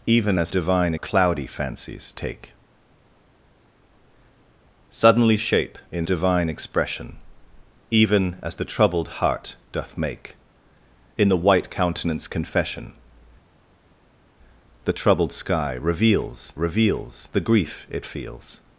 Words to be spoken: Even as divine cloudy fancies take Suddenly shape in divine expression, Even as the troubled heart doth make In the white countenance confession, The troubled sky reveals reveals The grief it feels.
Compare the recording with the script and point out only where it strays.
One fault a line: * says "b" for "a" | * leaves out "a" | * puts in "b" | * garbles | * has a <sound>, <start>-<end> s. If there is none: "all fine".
all fine